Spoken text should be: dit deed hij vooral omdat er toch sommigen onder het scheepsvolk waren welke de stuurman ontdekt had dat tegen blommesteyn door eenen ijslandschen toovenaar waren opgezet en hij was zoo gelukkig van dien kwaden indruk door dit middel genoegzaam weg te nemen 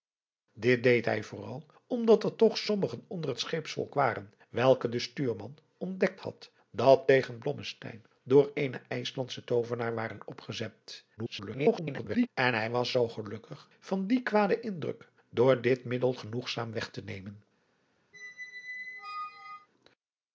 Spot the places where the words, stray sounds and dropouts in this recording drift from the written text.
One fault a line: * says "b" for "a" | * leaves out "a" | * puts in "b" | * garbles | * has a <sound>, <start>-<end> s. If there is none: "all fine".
* garbles
* has a squeak, 18.1-19.7 s